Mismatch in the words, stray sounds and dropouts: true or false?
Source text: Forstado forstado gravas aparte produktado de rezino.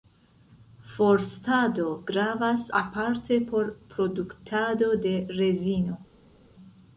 true